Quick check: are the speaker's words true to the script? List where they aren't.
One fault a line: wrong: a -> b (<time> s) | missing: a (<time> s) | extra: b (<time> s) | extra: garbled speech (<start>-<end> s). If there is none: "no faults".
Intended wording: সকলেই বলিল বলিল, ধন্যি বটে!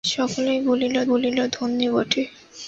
no faults